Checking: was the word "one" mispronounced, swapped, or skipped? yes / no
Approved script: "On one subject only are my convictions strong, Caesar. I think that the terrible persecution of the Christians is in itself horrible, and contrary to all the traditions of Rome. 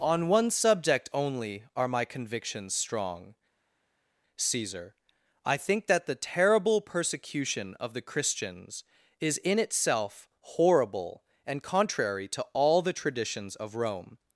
no